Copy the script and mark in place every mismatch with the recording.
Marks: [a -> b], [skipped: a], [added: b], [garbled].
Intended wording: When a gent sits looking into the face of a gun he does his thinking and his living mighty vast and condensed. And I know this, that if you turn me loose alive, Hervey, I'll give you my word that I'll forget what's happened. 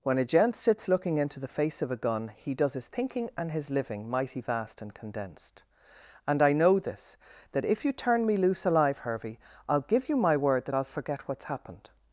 When a gent sits looking into the face of a gun he does his thinking and his living mighty vast and condensed. And I know this, that if you turn me loose alive, Hervey, I'll give you my word that I'll forget what's happened.